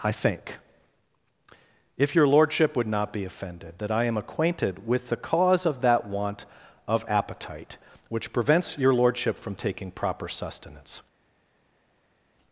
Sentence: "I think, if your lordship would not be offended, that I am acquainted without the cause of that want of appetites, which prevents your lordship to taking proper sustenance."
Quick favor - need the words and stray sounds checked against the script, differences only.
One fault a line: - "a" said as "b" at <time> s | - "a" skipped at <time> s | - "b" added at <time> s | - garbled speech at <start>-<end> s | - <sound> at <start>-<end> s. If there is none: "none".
- "without" said as "with" at 4.9 s
- "appetites" said as "appetite" at 7.1 s
- "to" said as "from" at 9.4 s